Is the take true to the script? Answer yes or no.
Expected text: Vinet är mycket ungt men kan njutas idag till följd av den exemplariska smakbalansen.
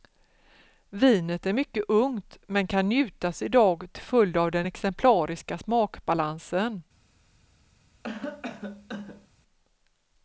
yes